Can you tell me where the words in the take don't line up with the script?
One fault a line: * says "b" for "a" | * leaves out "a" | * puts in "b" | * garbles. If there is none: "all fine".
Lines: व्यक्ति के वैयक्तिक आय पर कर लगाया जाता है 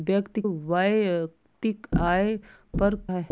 * leaves out "के"
* leaves out "कर लगाया जाता"